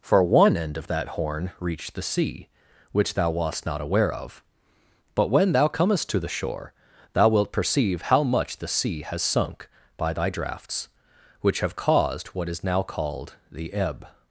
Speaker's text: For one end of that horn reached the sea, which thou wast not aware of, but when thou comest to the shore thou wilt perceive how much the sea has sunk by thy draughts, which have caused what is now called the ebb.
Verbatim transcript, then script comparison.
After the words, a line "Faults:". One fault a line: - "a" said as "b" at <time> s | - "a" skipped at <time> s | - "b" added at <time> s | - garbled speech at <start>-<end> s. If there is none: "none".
For one end of that horn reached the sea, which thou wast not aware of, but when thou comest to the shore thou wilt perceive how much the sea has sunk by thy draughts, which have caused what is now called the ebb.
Faults:
none